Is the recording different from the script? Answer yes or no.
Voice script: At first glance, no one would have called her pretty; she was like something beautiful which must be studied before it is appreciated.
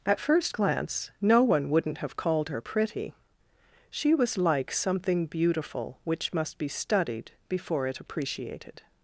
yes